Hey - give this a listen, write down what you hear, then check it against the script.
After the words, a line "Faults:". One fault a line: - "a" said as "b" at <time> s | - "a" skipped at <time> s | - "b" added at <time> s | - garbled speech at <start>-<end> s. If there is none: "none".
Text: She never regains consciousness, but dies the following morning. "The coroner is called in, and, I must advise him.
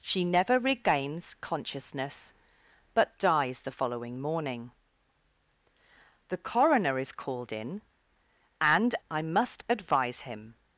She never regains consciousness, but dies the following morning. "The coroner is called in, and, I must advise him.
Faults:
none